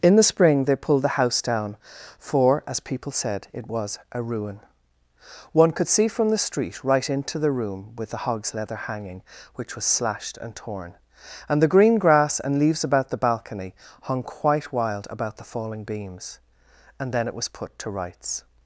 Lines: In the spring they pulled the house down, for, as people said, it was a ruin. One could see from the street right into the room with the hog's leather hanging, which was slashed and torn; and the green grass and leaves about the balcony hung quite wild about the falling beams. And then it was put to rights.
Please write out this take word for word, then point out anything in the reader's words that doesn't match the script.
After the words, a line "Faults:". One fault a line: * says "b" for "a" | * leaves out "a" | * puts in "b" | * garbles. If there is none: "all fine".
In the spring they pulled the house down, for, as people said, it was a ruin. One could see from the street right into the room with the hog's leather hanging, which was slashed and torn; and the green grass and leaves about the balcony hung quite wild about the falling beams. And then it was put to rights.
Faults:
all fine